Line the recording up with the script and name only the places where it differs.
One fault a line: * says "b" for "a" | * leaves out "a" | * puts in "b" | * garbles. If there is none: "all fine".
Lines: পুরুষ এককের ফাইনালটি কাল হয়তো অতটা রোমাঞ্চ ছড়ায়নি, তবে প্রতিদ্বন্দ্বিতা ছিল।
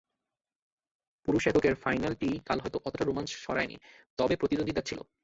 all fine